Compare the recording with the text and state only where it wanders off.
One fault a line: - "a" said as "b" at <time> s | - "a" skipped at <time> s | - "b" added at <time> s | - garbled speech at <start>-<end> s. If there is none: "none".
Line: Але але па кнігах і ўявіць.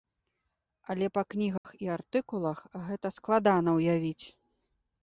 - "але" skipped at 1.1 s
- "артыкулах гэта складана" added at 2.0 s